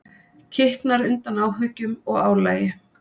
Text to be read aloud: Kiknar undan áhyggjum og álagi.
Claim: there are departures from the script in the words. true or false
false